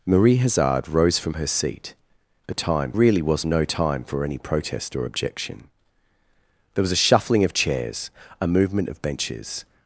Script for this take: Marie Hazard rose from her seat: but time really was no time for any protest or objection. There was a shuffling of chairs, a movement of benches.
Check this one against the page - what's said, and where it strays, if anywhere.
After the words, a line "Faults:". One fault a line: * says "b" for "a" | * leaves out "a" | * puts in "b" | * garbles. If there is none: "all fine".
Marie Hazard rose from her seat: but time really was no time for any protest or objection. There was a shuffling of chairs, a movement of benches.
Faults:
all fine